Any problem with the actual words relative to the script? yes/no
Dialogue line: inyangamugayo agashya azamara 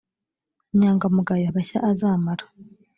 no